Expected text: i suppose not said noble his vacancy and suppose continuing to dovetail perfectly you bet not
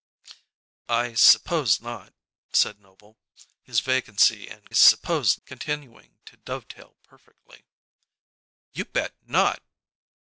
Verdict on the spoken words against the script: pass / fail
pass